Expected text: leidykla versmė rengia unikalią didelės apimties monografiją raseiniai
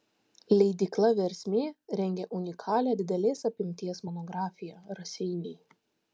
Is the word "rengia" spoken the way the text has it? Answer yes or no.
yes